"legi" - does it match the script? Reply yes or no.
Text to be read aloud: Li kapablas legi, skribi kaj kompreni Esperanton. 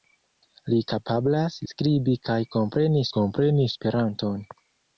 no